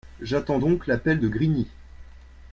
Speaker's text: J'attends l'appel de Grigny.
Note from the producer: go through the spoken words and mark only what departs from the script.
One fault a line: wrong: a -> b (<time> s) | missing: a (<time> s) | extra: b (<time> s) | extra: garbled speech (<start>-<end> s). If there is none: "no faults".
extra: donc (0.6 s)